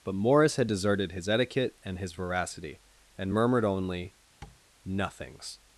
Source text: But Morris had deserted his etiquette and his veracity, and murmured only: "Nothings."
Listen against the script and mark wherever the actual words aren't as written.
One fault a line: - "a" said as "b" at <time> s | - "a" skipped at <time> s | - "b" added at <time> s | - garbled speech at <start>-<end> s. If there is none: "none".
none